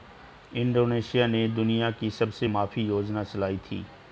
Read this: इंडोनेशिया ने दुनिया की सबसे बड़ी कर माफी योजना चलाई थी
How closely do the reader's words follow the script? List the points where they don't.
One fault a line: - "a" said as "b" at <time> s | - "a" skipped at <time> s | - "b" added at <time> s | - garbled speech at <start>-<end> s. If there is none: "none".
- "बड़ी कर" skipped at 2.5 s